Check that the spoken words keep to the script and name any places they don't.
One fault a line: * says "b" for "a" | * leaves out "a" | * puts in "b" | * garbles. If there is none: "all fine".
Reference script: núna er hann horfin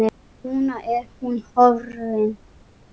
* says "hún" for "hann"